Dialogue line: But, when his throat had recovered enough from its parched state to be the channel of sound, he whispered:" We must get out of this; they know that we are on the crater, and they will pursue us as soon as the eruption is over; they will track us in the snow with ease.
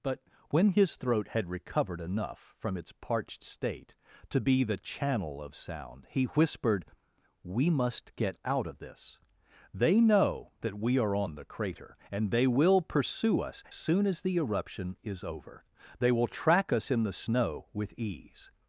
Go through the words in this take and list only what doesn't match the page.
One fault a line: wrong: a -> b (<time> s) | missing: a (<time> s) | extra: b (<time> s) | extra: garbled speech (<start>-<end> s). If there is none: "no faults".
missing: as (13.6 s)